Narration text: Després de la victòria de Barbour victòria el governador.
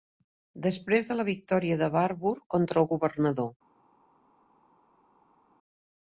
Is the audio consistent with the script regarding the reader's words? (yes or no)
no